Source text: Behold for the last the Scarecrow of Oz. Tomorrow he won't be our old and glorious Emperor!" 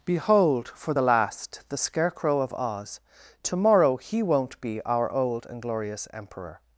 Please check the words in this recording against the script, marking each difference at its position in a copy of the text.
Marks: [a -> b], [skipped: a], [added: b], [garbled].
Behold for the last the Scarecrow of Oz. Tomorrow he won't be our old and glorious Emperor!"